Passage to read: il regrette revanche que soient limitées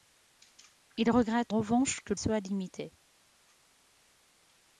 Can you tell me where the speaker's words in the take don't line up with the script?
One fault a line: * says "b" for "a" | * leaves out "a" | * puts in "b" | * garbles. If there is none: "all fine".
all fine